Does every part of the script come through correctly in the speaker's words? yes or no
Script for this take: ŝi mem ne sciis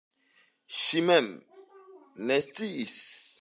yes